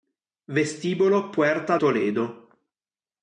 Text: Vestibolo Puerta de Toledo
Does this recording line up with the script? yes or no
no